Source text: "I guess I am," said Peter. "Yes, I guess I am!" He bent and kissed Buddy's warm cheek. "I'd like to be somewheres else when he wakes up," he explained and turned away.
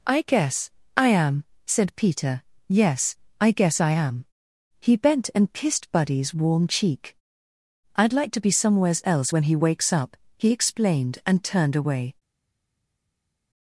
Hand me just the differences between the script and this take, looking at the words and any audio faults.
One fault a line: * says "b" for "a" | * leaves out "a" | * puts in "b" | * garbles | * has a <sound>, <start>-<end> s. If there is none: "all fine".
all fine